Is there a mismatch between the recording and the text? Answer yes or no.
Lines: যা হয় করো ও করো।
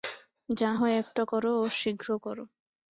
yes